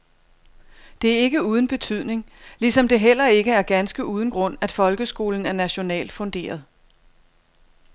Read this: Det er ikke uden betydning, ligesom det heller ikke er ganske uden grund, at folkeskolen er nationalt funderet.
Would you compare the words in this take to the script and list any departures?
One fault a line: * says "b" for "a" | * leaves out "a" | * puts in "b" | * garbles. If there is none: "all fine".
all fine